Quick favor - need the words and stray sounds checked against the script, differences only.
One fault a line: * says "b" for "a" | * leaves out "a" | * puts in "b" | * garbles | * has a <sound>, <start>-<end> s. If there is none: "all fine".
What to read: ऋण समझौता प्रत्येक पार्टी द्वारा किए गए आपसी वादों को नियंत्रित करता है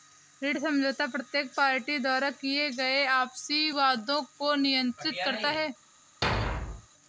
* has a thud, 6.2-6.9 s